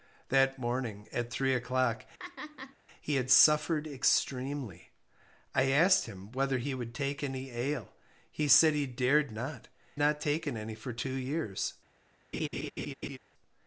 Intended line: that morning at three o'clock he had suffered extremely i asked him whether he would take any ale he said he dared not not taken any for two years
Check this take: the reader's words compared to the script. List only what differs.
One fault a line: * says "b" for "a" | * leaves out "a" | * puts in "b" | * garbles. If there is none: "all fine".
all fine